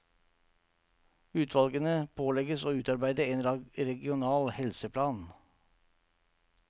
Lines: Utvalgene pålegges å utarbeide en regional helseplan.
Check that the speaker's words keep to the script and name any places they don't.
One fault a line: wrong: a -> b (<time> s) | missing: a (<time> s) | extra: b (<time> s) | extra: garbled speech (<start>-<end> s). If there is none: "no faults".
no faults